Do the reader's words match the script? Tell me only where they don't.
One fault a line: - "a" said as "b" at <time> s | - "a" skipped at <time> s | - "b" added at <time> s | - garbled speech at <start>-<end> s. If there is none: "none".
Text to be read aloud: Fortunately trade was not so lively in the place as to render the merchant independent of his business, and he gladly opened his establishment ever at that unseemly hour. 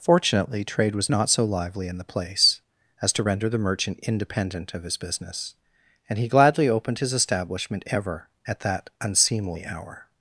none